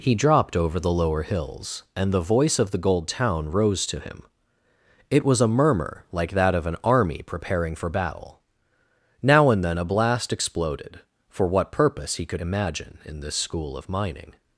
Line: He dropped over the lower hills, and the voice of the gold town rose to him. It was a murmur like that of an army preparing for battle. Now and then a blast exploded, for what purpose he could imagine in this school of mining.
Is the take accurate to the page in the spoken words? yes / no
yes